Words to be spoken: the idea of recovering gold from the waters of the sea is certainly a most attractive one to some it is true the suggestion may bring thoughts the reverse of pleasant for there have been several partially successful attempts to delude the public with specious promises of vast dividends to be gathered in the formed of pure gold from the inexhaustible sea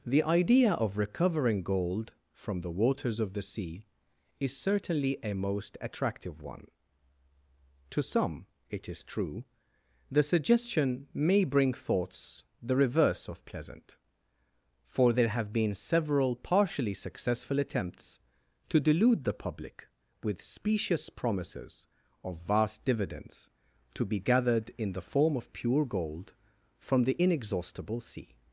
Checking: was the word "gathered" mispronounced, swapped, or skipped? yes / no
no